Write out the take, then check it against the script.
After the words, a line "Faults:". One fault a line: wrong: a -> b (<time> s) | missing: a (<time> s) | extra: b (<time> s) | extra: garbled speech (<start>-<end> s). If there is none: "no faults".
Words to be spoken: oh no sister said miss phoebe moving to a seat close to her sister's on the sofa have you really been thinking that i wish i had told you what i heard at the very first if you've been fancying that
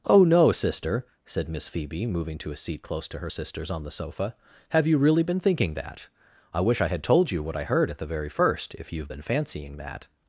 oh no sister said miss phoebe moving to a seat close to her sister's on the sofa have you really been thinking that i wish i had told you what i heard at the very first if you've been fancying that
Faults:
no faults